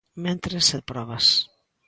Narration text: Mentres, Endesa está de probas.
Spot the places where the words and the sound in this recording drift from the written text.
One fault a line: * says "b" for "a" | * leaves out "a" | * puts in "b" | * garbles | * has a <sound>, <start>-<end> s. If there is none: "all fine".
* leaves out "Endesa está"